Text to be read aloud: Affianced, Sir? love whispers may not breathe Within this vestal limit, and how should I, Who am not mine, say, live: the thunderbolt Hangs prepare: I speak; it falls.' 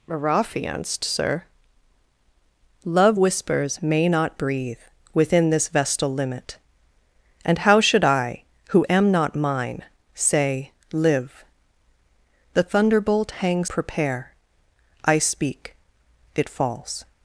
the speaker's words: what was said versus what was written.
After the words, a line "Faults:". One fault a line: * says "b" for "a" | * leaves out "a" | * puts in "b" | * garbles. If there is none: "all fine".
Affianced, Sir? love whispers may not breathe Within this vestal limit, and how should I, Who am not mine, say, live: the thunderbolt Hangs prepare: I speak; it falls.'
Faults:
all fine